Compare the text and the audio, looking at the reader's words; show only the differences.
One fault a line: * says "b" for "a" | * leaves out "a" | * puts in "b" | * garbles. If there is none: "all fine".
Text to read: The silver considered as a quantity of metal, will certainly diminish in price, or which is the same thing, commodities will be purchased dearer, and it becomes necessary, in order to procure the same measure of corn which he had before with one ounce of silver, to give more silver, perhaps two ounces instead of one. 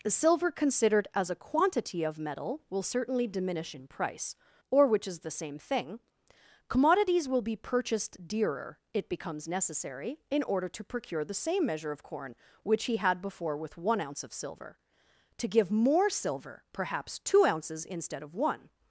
* leaves out "and"